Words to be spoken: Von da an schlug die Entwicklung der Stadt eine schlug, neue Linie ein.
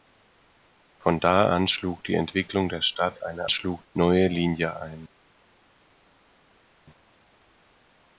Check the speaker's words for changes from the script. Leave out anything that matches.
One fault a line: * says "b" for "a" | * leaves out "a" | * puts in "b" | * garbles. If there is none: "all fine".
all fine